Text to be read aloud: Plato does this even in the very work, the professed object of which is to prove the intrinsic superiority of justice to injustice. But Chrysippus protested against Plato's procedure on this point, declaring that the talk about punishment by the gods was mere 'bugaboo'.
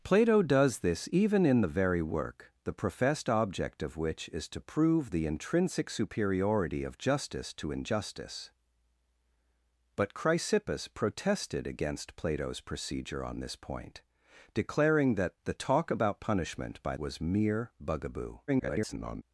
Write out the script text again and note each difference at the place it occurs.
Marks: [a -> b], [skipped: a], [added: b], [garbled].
Plato does this even in the very work, the professed object of which is to prove the intrinsic superiority of justice to injustice. But Chrysippus protested against Plato's procedure on this point, declaring that the talk about punishment by [skipped: the gods] was mere 'bugaboo'. [garbled]